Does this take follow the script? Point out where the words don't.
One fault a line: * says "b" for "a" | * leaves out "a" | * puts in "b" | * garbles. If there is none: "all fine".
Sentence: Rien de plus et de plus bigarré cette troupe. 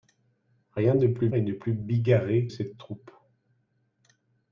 all fine